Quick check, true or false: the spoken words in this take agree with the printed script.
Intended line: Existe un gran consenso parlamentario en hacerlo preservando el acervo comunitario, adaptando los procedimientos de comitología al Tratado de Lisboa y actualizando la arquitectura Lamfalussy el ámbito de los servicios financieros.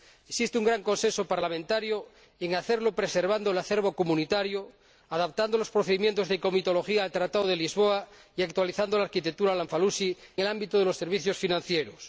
true